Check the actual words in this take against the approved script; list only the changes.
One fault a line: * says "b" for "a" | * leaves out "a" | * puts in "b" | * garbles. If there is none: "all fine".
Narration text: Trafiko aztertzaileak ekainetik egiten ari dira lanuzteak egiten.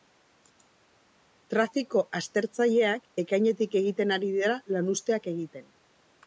all fine